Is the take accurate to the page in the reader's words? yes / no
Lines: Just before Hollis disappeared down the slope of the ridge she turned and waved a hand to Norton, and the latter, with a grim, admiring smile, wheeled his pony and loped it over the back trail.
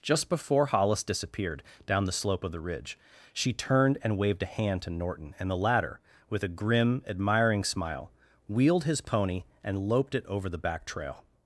yes